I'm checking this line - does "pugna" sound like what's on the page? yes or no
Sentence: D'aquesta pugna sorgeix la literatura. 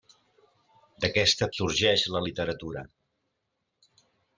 no